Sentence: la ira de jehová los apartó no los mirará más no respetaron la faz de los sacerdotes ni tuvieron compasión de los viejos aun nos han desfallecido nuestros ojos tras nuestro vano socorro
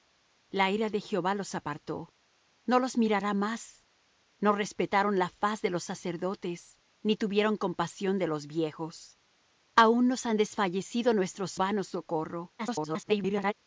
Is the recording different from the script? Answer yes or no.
yes